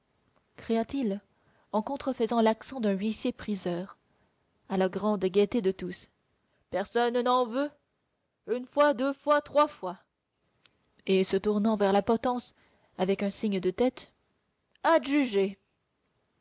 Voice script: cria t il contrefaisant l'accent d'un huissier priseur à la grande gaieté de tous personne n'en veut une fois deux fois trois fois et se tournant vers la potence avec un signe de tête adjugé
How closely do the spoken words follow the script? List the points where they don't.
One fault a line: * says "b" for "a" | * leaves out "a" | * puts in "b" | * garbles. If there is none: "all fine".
* puts in "en"